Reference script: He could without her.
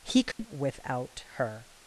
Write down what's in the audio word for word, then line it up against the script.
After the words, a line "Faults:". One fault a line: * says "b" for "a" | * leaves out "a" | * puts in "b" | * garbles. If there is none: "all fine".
He could without her.
Faults:
all fine